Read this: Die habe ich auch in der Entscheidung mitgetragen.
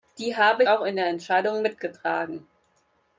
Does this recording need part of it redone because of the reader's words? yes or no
yes